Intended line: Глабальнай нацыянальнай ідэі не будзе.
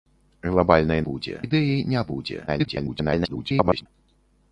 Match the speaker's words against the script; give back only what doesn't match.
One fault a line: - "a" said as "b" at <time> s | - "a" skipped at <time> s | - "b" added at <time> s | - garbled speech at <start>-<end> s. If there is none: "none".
- "нацыянальнай" said as "будзе" at 1.1 s
- garbled speech at 2.5-3.9 s